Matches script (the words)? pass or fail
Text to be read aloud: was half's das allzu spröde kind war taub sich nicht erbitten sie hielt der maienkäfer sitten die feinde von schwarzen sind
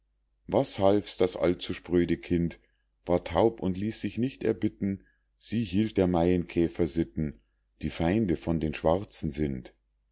fail